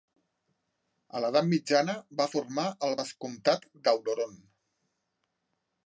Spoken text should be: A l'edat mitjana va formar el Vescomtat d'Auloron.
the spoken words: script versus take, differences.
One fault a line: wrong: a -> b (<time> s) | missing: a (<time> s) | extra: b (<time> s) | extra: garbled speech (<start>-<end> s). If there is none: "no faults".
no faults